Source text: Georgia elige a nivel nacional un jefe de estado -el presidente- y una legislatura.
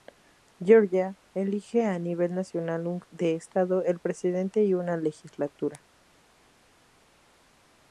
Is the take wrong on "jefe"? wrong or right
wrong